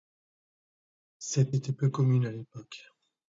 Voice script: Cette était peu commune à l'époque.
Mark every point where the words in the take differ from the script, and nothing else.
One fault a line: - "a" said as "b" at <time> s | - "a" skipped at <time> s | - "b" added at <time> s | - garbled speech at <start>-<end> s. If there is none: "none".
none